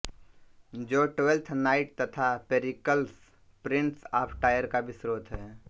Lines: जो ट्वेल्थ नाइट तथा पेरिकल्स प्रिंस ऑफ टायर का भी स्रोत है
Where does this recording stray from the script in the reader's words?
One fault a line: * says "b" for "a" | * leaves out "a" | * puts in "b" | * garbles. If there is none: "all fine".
all fine